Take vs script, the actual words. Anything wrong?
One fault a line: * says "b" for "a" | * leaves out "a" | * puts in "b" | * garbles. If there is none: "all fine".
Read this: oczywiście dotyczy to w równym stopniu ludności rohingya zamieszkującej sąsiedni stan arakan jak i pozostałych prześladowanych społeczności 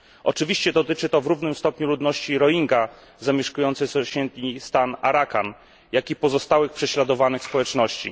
all fine